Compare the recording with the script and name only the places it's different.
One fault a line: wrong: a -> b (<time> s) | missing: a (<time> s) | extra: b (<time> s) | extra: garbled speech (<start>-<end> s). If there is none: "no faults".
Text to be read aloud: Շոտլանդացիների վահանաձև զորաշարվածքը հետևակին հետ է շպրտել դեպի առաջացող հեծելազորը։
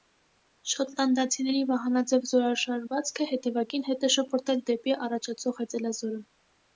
no faults